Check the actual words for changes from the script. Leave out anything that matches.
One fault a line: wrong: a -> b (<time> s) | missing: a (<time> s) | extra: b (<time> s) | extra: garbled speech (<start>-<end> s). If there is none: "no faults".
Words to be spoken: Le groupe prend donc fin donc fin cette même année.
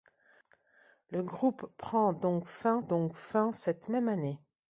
no faults